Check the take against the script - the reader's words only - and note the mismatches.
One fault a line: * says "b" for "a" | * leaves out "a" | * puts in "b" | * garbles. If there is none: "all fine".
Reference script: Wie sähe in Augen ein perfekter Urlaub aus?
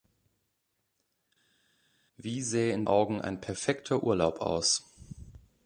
all fine